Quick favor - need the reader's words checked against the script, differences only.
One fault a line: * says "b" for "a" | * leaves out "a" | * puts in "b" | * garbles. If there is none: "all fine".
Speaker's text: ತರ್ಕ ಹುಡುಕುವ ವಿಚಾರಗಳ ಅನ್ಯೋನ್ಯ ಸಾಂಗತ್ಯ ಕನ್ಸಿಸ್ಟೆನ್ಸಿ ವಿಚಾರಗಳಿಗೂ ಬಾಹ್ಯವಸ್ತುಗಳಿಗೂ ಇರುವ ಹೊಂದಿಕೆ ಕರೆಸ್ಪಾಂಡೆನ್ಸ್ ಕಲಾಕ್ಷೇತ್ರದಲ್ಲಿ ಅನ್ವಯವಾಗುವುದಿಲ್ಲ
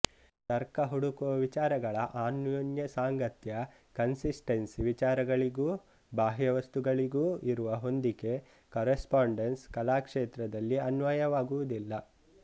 all fine